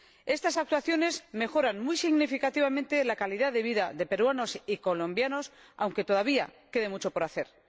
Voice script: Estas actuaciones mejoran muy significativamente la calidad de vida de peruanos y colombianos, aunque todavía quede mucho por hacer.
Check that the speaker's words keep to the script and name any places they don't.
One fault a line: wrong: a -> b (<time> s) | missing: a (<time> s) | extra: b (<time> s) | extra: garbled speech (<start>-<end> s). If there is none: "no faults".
no faults